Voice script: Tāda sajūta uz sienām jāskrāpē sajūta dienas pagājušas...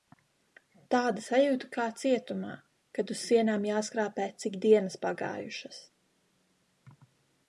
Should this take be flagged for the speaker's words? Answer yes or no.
yes